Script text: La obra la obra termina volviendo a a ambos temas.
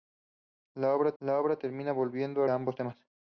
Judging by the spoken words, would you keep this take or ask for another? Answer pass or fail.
pass